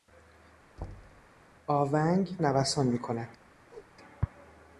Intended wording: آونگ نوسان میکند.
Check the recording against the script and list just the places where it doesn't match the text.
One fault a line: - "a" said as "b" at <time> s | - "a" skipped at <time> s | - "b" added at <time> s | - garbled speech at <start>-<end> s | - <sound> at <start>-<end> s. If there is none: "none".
- thud at 0.8-1.3 s
- whoosh at 3.7-3.9 s